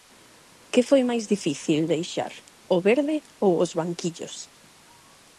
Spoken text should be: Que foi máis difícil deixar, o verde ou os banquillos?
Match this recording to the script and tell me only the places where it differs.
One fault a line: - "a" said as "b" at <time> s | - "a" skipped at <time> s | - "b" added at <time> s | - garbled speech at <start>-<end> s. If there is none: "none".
none